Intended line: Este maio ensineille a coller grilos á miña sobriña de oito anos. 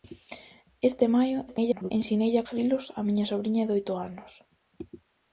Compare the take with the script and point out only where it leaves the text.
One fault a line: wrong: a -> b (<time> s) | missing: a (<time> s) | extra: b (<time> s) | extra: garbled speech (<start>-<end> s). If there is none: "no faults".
extra: garbled speech (1.5-1.9 s)
missing: coller (2.5 s)